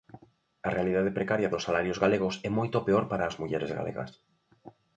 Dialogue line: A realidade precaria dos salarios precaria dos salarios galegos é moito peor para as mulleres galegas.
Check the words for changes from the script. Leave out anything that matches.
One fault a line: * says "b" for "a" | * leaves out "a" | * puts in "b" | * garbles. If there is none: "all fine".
* leaves out "precaria dos salarios"